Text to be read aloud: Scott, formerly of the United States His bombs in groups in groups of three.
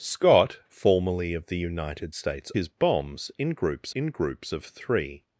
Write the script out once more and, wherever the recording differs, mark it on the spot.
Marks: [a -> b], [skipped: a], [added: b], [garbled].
Scott, formerly of the United States His bombs in groups in groups of three.